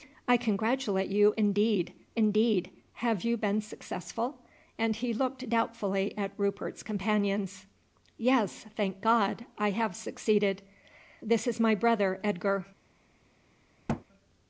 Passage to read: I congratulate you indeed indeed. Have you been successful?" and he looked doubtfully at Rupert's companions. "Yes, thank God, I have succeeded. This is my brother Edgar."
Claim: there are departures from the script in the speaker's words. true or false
false